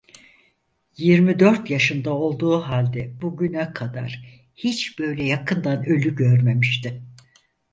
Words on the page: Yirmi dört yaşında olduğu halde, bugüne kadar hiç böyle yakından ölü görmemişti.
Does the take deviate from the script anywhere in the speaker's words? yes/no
no